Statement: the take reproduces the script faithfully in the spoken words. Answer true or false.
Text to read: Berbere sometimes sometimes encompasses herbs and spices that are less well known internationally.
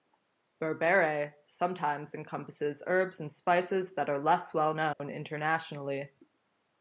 false